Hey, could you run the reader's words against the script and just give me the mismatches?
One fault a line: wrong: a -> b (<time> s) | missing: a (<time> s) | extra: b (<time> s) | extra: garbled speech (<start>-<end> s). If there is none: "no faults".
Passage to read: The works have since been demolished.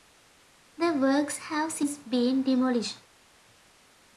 no faults